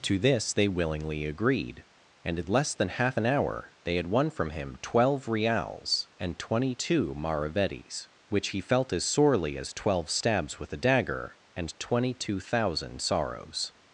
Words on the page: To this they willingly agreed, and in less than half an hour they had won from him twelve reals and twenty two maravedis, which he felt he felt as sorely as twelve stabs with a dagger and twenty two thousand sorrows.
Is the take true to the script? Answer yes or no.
no